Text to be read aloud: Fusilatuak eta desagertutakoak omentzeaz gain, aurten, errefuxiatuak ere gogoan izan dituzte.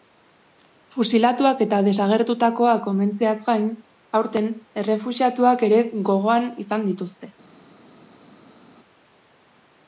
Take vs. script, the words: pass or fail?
pass